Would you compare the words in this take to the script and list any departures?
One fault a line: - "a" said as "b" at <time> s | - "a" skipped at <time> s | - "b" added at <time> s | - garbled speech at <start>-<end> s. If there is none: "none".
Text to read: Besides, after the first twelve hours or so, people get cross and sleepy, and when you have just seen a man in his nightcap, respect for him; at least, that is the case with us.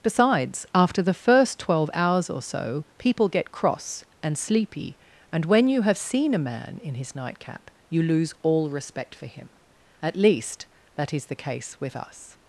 - "just" skipped at 6.0 s
- "you lose all" added at 7.9 s